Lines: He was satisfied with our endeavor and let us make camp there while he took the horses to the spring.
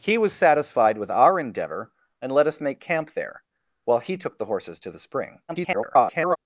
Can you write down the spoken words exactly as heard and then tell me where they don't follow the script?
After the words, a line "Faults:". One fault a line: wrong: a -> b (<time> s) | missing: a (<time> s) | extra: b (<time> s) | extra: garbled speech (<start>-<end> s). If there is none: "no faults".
He was satisfied with our endeavor and let us make camp there while he took the horses to the spring. [garbled]
Faults:
extra: garbled speech (5.5-6.4 s)